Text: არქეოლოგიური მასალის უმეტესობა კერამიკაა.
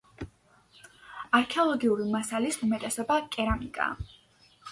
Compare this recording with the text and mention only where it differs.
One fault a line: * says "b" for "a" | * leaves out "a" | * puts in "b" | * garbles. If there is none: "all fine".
all fine